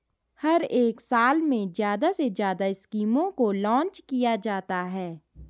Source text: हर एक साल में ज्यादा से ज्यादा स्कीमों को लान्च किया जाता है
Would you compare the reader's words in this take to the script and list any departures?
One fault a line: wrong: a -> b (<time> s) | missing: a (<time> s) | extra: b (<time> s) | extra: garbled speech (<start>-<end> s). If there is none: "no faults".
no faults